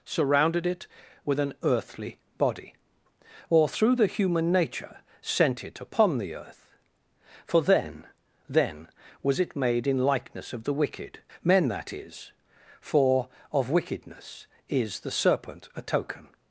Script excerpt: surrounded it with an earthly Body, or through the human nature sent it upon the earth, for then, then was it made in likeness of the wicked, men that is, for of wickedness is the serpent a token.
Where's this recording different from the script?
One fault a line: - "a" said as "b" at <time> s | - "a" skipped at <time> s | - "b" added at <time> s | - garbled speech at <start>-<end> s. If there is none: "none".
none